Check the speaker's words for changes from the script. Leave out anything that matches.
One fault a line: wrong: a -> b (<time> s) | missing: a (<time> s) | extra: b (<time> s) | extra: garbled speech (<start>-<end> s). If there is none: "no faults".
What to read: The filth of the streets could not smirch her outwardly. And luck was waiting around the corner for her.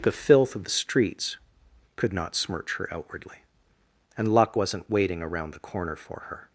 wrong: was -> wasn't (4.5 s)